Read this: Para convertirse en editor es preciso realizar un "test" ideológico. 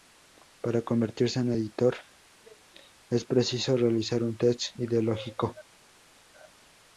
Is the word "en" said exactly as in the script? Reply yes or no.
yes